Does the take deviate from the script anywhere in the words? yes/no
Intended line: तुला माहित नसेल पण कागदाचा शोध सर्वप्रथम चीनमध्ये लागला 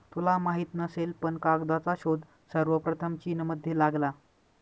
no